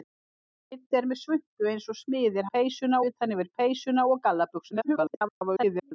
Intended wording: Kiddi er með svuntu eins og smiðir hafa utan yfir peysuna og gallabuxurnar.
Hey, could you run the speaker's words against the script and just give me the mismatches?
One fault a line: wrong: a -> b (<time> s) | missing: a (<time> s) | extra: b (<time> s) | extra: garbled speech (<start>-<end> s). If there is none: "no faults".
wrong: hafa -> peysuna (2.6 s)
extra: garbled speech (4.7-5.9 s)